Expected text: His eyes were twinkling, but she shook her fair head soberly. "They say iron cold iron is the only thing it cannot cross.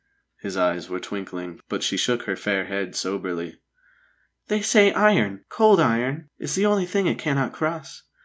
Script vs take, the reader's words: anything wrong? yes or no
no